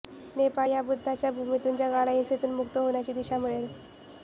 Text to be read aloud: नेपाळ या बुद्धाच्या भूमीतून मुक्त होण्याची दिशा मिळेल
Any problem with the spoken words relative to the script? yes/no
yes